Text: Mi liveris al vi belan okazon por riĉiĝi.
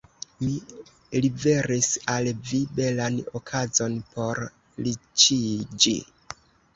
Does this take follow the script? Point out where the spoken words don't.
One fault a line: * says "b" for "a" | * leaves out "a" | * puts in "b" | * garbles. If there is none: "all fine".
all fine